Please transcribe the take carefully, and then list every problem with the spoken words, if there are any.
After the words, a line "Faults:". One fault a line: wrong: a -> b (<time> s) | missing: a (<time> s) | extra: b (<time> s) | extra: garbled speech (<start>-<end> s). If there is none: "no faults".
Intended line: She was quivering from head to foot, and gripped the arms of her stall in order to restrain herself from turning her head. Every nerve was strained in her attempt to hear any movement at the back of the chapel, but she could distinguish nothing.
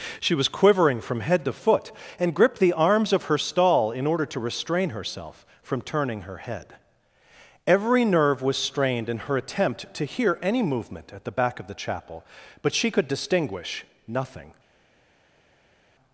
She was quivering from head to foot, and gripped the arms of her stall in order to restrain herself from turning her head. Every nerve was strained in her attempt to hear any movement at the back of the chapel, but she could distinguish nothing.
Faults:
no faults